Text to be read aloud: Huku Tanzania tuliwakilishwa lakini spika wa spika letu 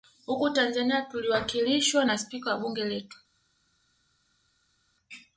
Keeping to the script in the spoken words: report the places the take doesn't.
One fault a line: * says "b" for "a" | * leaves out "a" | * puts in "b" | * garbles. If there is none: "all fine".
* says "na" for "lakini"
* says "bunge" for "spika"